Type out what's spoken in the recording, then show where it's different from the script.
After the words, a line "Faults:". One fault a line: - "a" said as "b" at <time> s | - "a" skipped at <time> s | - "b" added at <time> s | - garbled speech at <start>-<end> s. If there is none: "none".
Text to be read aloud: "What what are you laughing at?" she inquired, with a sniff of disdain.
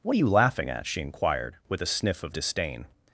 "What are you laughing at?" she inquired, with a sniff of disdain.
Faults:
- "what" skipped at 0.1 s